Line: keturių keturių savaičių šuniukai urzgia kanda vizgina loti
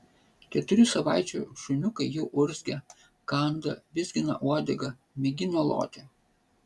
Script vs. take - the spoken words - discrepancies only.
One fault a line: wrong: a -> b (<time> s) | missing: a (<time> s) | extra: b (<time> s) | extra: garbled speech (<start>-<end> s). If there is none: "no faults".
missing: keturių (0.8 s)
extra: jau (2.1 s)
extra: uodegą mėgina (4.5 s)